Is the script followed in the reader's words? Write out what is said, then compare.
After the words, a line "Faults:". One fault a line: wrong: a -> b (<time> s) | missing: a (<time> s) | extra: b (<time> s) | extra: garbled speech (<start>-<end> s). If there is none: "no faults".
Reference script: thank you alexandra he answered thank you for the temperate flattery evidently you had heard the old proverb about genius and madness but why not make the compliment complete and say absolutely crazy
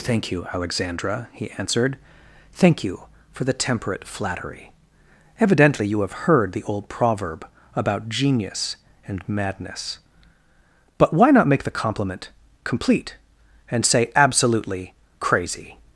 thank you alexandra he answered thank you for the temperate flattery evidently you have heard the old proverb about genius and madness but why not make the compliment complete and say absolutely crazy
Faults:
wrong: had -> have (6.0 s)